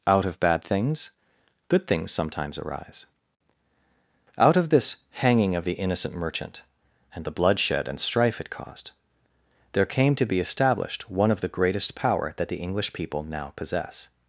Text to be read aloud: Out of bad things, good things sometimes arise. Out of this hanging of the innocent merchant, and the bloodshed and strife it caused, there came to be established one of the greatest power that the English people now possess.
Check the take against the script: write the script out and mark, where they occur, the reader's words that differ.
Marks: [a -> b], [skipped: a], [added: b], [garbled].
Out of bad things, good things sometimes arise. Out of this hanging of the innocent merchant, and the bloodshed and strife it caused, there came to be established one of the greatest power that the English people now possess.